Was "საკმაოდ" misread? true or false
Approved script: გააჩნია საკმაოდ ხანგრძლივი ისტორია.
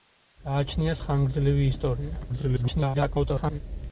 true